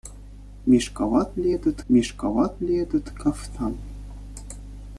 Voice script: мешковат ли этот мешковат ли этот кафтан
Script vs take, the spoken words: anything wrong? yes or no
no